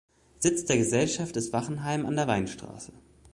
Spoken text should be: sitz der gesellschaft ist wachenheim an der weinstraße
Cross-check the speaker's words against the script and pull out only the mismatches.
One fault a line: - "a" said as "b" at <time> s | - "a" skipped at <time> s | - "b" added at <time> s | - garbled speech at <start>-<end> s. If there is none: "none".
none